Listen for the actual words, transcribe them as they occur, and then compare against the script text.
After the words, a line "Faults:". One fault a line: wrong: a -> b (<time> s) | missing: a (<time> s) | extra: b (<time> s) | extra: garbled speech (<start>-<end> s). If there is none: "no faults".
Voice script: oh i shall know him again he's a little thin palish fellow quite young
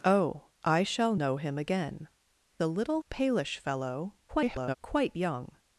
oh i shall know him again a little palish fellow [garbled] quite young
Faults:
missing: he's (2.1 s)
missing: thin (3.0 s)
extra: garbled speech (4.3-4.8 s)